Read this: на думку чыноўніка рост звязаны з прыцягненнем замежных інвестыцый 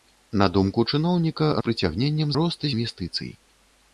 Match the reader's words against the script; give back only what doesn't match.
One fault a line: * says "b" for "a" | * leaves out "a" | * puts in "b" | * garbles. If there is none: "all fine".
* leaves out "рост звязаны"
* says "рост" for "замежных"